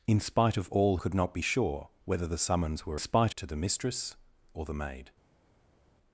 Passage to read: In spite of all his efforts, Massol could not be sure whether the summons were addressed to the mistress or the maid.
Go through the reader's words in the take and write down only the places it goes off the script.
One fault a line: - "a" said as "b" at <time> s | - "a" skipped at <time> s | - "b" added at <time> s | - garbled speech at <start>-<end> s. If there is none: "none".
- "his efforts Massol" skipped at 1.0 s
- "addressed" said as "spite" at 3.0 s